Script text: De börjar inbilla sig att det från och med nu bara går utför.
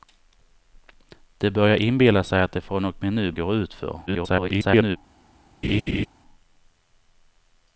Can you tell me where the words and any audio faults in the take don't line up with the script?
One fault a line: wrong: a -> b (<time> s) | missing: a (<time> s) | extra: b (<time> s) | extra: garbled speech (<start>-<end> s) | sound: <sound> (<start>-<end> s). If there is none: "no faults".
missing: bara (3.3 s)
extra: garbled speech (4.1-5.0 s)
sound: laugh (5.6-6.1 s)